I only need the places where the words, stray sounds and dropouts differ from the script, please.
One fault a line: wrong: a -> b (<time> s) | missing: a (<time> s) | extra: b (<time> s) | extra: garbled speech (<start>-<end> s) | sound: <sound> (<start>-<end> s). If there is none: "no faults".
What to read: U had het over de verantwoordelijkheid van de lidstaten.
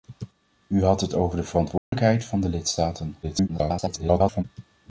sound: dropout (1.8-1.9 s)
extra: garbled speech (3.2-4.4 s)